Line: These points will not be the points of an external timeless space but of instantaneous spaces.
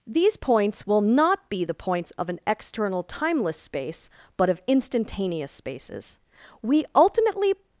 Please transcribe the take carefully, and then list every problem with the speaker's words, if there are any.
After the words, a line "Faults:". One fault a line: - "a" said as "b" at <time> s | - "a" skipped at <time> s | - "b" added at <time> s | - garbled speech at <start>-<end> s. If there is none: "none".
These points will not be the points of an external timeless space but of instantaneous spaces. We ultimately
Faults:
- "We ultimately" added at 6.6 s